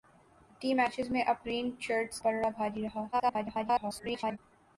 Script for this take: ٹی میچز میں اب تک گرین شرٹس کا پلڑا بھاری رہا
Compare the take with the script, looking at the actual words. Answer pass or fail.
fail